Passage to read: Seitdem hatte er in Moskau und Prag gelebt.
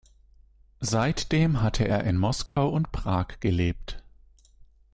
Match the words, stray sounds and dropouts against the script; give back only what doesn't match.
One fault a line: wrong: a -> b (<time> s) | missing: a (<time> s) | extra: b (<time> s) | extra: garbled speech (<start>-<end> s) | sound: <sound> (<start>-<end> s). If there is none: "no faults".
sound: dropout (2.5-2.6 s)